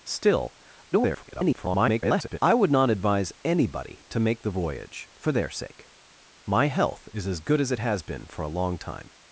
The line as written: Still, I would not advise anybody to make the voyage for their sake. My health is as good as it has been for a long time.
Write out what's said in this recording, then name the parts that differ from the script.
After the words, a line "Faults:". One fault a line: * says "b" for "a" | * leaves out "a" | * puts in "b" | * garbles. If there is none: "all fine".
Still, [garbled] I would not advise anybody to make the voyage for their sake. My health is as good as it has been for a long time.
Faults:
* garbles